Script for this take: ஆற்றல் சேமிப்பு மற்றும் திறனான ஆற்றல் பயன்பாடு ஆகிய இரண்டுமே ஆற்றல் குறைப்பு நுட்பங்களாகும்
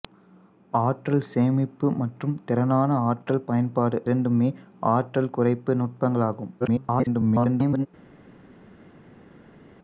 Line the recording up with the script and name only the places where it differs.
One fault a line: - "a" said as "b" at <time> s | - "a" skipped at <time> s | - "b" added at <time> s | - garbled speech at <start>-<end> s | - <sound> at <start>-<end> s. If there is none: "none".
- "ஆகிய" skipped at 4.0 s
- garbled speech at 6.6-7.9 s